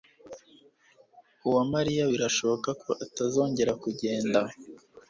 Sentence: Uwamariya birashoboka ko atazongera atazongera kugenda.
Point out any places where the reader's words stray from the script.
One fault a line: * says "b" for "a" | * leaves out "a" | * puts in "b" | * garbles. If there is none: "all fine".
* leaves out "atazongera"